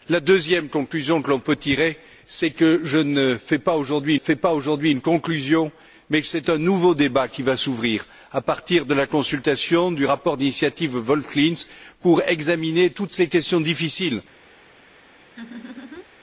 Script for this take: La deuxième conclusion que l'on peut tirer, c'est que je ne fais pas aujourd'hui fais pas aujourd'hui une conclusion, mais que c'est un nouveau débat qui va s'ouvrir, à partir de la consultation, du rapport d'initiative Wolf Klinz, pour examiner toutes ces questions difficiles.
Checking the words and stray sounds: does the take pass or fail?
fail